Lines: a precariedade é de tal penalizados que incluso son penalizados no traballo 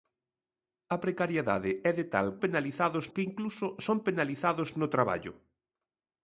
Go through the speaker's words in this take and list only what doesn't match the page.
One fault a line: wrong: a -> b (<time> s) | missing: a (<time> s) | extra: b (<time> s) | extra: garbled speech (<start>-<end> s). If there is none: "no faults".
no faults